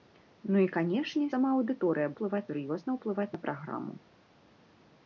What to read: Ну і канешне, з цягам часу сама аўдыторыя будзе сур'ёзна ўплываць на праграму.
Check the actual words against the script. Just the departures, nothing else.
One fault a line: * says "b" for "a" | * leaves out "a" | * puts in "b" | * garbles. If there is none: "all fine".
* leaves out "з цягам часу"
* says "ўплываць" for "будзе"